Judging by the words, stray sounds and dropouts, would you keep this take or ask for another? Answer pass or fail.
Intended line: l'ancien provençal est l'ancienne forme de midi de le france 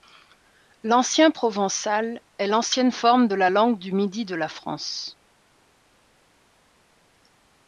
fail